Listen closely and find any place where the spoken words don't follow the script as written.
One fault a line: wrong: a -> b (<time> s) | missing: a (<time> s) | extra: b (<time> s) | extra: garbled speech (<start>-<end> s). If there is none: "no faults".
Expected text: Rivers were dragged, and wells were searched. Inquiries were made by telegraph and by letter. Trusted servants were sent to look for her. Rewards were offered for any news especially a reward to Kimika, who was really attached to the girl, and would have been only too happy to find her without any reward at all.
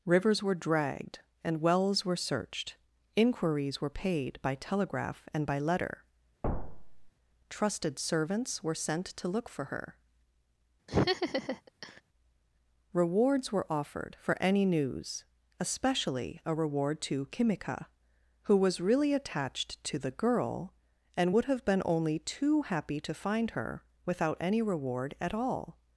wrong: made -> paid (3.9 s)